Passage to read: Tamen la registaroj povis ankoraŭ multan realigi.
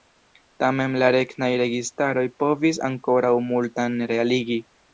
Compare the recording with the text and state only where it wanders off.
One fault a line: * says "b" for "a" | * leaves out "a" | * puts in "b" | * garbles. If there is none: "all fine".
* puts in "regnaj"